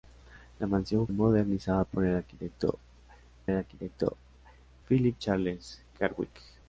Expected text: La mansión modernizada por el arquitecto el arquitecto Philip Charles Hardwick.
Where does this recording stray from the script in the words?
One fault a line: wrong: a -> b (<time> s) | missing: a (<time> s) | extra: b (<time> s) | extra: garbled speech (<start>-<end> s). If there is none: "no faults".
no faults